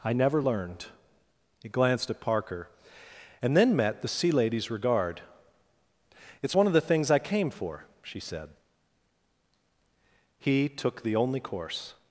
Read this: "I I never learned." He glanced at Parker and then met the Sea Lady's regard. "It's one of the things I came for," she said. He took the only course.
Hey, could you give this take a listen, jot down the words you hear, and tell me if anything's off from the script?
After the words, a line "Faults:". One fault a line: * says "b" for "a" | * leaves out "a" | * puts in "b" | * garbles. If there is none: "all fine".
"I never learned." He glanced at Parker and then met the Sea Lady's regard. "It's one of the things I came for," she said. He took the only course.
Faults:
* leaves out "I"